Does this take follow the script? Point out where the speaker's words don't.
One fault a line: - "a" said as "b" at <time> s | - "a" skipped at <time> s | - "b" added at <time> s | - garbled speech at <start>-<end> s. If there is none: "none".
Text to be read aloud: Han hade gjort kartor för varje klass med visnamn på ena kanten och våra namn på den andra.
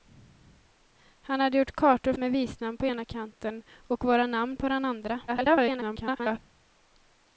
- "för varje klass" skipped at 2.1 s
- garbled speech at 5.3-6.4 s